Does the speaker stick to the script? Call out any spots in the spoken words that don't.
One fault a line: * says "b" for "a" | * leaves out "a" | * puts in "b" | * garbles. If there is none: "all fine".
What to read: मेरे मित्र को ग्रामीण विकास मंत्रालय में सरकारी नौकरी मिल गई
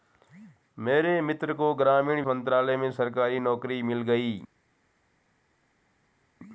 * leaves out "विकास"